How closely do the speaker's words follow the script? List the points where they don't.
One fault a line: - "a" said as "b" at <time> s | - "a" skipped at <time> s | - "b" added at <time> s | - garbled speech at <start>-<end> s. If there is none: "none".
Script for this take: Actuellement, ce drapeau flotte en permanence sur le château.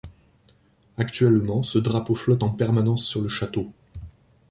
none